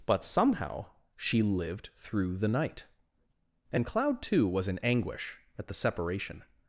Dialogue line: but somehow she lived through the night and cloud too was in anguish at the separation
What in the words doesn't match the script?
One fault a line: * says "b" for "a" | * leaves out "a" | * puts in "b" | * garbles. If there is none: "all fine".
all fine